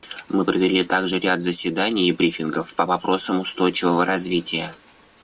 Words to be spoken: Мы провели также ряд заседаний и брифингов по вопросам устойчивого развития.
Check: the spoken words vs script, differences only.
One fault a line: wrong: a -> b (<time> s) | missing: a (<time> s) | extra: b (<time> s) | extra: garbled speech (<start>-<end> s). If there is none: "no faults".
no faults